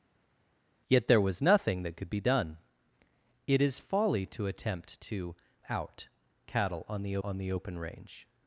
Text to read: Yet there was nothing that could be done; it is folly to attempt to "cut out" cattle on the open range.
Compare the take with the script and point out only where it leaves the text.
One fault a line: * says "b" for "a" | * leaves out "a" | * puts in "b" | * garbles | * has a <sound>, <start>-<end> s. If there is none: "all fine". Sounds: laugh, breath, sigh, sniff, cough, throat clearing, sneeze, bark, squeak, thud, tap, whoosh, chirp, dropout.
* leaves out "cut"
* puts in "on the"